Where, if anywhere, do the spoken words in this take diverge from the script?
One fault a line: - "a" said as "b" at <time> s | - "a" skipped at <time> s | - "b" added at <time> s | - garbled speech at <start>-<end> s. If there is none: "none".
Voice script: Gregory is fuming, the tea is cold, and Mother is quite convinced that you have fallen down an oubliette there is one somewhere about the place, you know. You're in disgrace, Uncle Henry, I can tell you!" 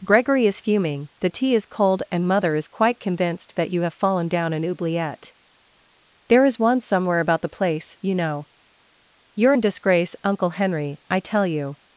- "can" skipped at 11.2 s